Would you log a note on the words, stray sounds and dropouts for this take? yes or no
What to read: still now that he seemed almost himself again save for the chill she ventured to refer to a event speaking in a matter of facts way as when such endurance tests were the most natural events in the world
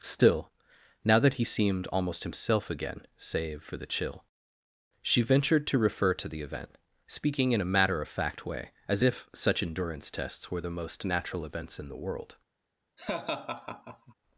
yes